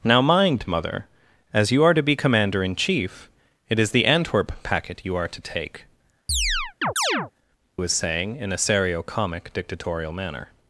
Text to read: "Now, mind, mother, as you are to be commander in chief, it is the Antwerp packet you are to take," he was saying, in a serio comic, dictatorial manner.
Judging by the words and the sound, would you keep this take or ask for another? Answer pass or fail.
fail